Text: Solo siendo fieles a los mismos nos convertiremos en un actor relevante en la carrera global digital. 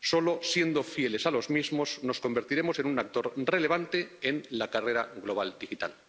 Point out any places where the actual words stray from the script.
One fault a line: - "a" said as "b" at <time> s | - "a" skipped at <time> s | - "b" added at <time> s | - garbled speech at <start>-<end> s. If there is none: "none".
none